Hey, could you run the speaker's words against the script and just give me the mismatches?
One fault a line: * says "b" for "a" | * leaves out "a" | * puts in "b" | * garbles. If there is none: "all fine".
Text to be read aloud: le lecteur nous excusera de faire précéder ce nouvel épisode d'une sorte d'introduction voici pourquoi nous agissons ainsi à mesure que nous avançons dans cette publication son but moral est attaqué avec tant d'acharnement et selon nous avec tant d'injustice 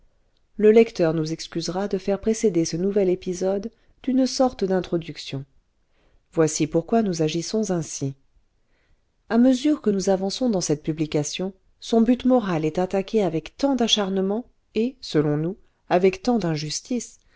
all fine